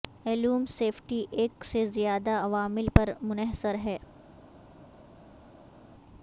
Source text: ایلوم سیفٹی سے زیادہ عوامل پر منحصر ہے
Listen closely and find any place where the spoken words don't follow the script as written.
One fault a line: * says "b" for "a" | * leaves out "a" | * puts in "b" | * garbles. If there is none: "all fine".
* puts in "ایک"